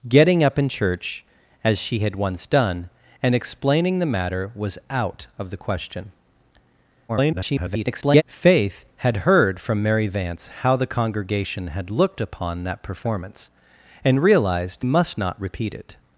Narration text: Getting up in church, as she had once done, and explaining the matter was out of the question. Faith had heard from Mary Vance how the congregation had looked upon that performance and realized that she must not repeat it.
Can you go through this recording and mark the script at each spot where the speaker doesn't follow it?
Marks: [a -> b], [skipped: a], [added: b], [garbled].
Getting up in church, as she had once done, and explaining the matter was out of the question. [garbled] Faith had heard from Mary Vance how the congregation had looked upon that performance and realized [skipped: that she] must not repeat it.